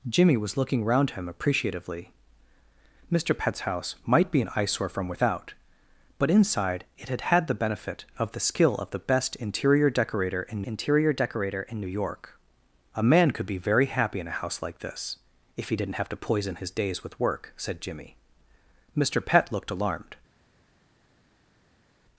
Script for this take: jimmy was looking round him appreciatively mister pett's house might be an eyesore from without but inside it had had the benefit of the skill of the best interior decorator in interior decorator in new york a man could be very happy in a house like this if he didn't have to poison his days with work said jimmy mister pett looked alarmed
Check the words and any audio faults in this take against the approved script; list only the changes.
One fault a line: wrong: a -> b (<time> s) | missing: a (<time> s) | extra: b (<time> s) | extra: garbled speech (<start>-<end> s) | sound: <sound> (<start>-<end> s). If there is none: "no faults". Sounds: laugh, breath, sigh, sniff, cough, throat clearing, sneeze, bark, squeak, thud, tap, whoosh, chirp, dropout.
no faults